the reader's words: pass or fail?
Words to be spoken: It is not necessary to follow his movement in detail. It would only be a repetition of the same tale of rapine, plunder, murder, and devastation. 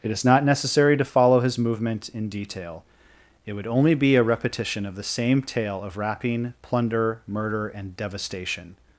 pass